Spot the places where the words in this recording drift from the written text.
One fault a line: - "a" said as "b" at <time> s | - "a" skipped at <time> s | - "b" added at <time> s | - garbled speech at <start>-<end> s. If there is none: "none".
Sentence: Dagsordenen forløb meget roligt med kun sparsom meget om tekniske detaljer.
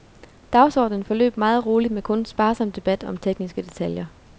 - "meget" said as "debat" at 2.7 s